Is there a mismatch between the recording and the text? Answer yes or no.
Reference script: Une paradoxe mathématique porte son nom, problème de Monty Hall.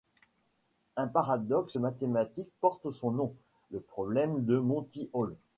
yes